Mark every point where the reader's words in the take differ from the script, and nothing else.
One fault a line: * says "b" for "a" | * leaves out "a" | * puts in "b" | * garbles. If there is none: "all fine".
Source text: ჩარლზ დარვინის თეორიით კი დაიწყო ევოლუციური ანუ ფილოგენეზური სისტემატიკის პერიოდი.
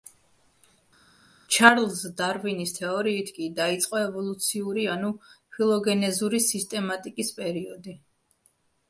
all fine